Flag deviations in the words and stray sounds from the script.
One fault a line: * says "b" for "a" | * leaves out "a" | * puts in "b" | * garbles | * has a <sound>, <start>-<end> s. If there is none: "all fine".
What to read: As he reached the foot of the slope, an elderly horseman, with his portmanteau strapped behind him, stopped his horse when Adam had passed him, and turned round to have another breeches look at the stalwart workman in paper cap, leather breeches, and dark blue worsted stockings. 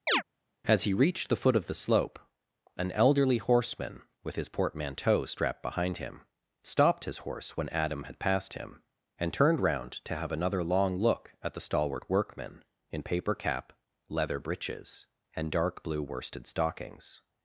* has a chirp, 0.1-0.2 s
* says "long" for "breeches"